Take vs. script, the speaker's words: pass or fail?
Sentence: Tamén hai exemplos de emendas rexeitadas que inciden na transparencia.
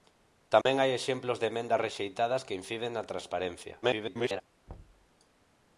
fail